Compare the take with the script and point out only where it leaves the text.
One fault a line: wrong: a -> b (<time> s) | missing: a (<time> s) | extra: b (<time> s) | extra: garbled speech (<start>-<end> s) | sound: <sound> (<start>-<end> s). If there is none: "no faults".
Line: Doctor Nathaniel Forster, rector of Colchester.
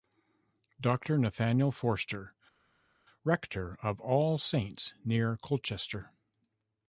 extra: All Saints near (4.0 s)